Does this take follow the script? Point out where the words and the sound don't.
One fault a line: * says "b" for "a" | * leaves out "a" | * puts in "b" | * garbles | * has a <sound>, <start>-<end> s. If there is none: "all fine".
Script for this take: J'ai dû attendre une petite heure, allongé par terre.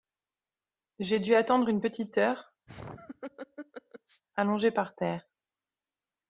* has a laugh, 2.7-4.2 s